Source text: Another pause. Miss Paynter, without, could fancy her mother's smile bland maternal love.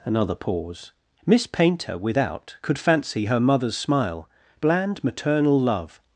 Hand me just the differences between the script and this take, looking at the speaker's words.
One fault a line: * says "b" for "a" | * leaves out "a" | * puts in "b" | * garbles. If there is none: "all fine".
all fine